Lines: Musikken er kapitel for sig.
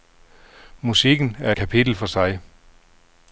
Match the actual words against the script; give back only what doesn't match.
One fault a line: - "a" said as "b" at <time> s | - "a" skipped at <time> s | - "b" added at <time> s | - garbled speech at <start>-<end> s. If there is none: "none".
none